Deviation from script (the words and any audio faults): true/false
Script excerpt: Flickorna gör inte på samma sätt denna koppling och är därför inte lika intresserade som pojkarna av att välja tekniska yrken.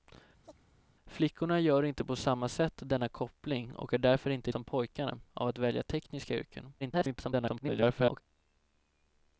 true